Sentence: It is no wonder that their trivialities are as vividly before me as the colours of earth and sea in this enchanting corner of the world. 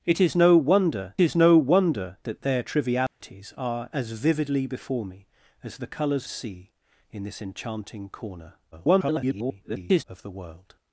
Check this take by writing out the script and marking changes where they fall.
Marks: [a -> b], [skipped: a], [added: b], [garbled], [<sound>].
It is no wonder [added: is no wonder] that their trivialities [dropout] are as vividly before me as the colours [skipped: of earth and] sea in this enchanting corner [garbled] of the world.